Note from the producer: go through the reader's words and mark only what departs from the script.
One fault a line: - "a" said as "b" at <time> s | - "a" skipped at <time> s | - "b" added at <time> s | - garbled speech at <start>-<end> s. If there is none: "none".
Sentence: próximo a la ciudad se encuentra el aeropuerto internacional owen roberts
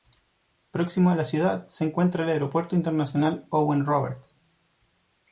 none